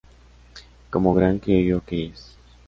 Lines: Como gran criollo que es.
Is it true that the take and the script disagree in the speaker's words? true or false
false